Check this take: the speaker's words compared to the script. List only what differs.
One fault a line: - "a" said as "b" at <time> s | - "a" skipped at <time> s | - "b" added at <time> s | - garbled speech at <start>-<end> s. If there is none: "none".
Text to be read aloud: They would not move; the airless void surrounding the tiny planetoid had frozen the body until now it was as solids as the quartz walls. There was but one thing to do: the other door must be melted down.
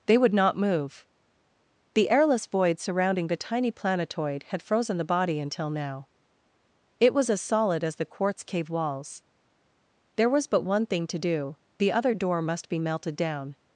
- "solids" said as "solid" at 7.4 s
- "cave" added at 8.4 s